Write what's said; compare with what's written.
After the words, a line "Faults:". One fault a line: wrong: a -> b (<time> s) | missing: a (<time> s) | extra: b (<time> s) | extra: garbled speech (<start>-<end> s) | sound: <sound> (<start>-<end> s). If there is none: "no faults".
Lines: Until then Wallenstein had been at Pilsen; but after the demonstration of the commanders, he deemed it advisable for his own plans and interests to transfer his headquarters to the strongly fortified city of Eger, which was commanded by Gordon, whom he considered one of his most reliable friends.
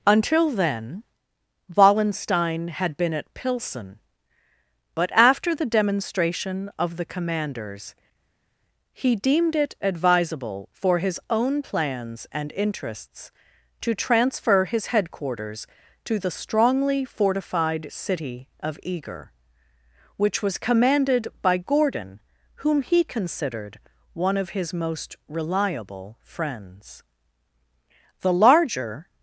Until then Wallenstein had been at Pilsen; but after the demonstration of the commanders, he deemed it advisable for his own plans and interests to transfer his headquarters to the strongly fortified city of Eger, which was commanded by Gordon, whom he considered one of his most reliable friends. The larger
Faults:
extra: The larger (28.2 s)